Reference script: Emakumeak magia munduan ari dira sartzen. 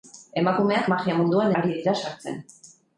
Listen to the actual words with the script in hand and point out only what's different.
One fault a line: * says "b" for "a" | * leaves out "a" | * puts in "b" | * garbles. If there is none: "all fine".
all fine